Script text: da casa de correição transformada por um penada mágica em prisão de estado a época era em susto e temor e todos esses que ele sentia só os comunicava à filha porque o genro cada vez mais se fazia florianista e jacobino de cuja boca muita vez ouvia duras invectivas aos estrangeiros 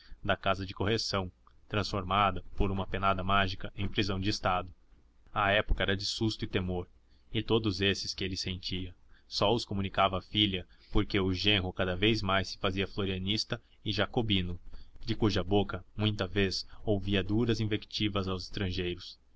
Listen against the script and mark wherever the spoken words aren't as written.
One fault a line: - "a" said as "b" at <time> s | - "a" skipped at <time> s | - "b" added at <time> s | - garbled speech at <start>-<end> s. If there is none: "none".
- "um" said as "uma" at 2.7 s
- "em" said as "de" at 6.0 s